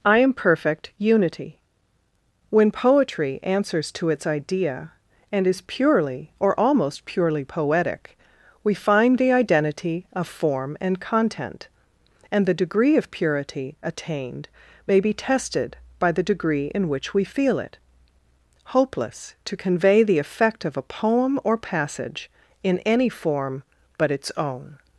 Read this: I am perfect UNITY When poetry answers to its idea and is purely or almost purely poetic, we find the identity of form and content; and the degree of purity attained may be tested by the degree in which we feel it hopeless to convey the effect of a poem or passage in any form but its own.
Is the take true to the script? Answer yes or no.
yes